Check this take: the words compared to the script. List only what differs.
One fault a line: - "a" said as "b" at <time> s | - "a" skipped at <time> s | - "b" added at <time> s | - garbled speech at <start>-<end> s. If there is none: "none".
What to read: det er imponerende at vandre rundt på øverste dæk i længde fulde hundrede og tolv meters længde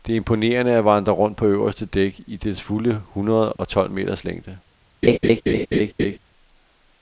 - "længde" said as "dets" at 2.4 s